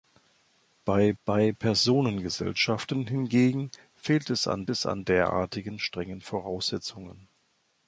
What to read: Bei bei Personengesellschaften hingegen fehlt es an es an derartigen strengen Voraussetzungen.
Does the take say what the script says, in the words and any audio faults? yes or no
yes